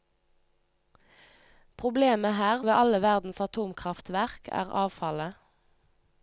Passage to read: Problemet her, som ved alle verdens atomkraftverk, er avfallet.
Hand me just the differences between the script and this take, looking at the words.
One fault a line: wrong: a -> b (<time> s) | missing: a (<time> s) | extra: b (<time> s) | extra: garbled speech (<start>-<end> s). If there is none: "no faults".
missing: som (2.6 s)